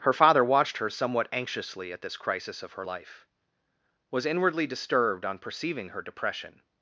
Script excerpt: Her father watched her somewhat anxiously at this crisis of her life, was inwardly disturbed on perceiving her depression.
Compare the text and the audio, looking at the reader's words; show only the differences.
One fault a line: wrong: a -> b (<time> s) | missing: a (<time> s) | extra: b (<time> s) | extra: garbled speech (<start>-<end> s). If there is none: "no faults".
no faults